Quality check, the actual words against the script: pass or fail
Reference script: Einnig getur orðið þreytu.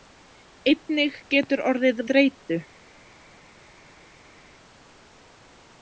pass